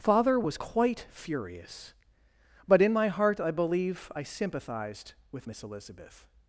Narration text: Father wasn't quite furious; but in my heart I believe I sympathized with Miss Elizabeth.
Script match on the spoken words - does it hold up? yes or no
no